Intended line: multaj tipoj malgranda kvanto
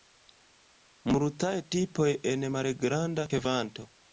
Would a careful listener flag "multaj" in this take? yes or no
no